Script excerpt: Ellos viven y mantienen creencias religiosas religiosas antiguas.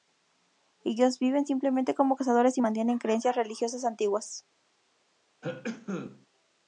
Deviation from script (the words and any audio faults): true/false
true